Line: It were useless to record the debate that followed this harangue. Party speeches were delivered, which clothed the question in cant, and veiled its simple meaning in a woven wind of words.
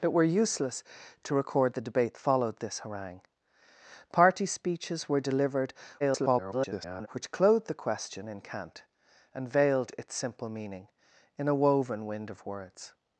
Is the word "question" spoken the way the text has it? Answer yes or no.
yes